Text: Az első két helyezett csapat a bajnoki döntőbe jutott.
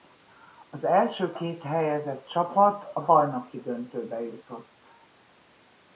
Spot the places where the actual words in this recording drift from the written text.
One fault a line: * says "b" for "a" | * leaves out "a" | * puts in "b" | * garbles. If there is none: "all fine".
all fine